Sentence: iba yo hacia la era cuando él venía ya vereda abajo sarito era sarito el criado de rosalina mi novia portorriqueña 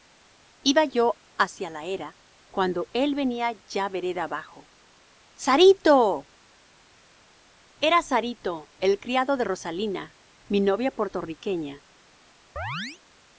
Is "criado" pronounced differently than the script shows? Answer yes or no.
no